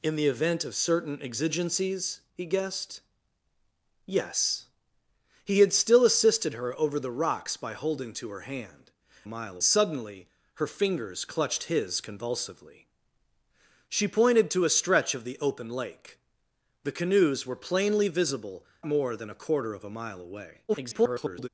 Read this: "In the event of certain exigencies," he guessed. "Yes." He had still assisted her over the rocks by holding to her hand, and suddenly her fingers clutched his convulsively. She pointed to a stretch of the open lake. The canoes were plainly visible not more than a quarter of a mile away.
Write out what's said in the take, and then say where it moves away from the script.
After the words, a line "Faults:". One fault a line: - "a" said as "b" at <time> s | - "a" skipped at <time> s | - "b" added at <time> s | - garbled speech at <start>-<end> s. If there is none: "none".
"In the event of certain exigencies," he guessed. "Yes." He had still assisted her over the rocks by holding to her hand, mile suddenly her fingers clutched his convulsively. She pointed to a stretch of the open lake. The canoes were plainly visible more than a quarter of a mile away. [garbled]
Faults:
- "and" said as "mile" at 9.3 s
- "not" skipped at 18.6 s
- garbled speech at 20.7-21.5 s